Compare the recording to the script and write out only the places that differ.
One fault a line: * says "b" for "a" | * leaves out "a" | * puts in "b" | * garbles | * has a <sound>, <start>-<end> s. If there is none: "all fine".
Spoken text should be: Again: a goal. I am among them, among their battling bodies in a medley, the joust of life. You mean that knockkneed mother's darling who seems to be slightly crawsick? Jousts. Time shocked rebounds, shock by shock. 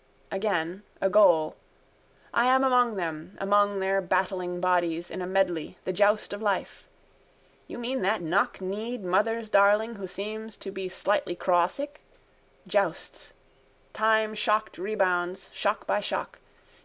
all fine